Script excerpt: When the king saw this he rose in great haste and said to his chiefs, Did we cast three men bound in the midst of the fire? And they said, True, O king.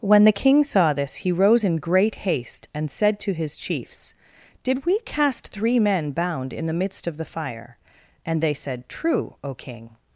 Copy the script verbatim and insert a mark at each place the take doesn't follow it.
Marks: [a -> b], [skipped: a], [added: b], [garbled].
When the king saw this he rose in great haste and said to his chiefs, Did we cast three men bound in the midst of the fire? And they said, True, O king.